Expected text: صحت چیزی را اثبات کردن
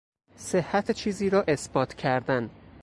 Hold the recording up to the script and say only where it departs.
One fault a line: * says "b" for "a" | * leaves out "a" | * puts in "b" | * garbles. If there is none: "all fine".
all fine